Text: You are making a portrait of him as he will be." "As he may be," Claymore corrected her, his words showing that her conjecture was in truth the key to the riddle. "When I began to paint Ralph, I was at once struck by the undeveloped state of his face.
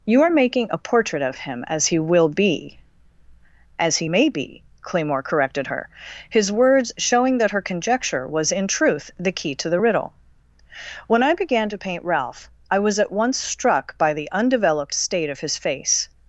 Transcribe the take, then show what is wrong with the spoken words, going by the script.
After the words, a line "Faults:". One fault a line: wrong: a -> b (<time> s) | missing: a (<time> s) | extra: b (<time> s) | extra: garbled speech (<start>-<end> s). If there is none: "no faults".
You are making a portrait of him as he will be." "As he may be," Claymore corrected her, his words showing that her conjecture was in truth the key to the riddle. "When I began to paint Ralph, I was at once struck by the undeveloped state of his face.
Faults:
no faults